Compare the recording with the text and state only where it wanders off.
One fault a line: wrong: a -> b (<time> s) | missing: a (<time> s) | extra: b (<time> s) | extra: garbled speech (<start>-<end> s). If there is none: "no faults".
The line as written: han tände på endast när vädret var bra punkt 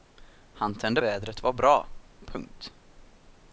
missing: på endast när (1.0 s)